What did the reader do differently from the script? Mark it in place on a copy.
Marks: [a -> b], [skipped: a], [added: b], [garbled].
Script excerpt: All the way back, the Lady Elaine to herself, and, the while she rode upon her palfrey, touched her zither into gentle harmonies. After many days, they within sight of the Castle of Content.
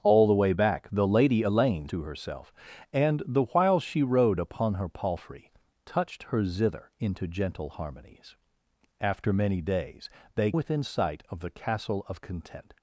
All the way back, the Lady Elaine to herself, and, the while she rode upon her palfrey, touched her zither into gentle harmonies. After many days, they within sight of the Castle of Content.